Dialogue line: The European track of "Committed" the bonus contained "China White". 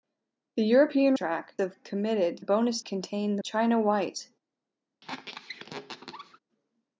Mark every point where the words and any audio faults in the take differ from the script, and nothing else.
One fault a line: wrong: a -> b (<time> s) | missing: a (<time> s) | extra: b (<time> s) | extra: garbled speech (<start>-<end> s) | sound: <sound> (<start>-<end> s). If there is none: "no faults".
sound: squeak (5.0-6.4 s)